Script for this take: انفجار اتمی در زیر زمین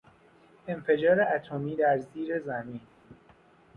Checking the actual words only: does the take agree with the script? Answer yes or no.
yes